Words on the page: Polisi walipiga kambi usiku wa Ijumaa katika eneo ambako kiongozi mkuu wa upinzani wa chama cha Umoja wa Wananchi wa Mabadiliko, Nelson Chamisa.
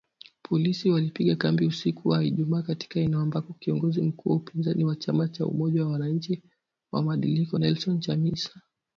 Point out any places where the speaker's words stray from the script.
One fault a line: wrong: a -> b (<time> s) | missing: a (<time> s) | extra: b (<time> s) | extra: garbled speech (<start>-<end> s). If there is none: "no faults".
no faults